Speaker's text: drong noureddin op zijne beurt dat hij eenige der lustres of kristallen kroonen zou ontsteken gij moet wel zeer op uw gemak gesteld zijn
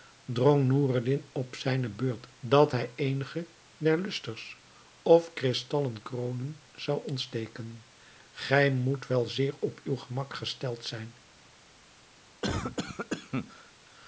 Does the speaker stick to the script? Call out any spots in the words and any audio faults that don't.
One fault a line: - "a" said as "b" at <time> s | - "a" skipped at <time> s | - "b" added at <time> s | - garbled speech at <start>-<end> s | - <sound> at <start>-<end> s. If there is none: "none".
- cough at 12.4-13.7 s